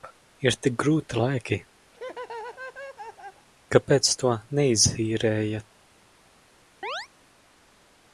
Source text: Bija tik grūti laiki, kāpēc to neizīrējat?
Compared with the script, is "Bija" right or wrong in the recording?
wrong